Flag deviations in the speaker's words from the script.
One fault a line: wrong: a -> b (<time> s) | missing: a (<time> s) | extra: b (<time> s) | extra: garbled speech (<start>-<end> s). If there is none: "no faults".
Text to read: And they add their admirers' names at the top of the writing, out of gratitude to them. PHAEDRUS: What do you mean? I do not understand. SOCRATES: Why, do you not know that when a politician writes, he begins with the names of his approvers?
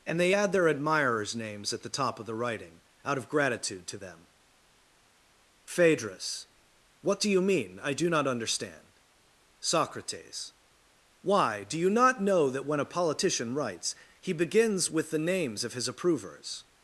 no faults